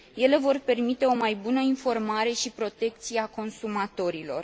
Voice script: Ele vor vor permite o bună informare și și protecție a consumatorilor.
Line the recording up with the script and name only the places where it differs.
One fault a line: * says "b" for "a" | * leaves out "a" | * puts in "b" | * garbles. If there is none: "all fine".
* leaves out "vor"
* puts in "mai"
* leaves out "și"